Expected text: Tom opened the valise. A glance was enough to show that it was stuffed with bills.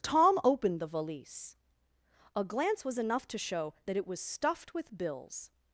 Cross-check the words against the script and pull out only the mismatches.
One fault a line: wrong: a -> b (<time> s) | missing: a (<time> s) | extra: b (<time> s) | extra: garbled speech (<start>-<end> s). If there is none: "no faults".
no faults